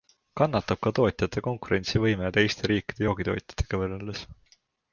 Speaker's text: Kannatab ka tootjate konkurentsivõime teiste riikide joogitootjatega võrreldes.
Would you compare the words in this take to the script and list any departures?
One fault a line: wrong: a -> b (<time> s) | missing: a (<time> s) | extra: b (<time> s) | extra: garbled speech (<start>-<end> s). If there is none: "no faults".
no faults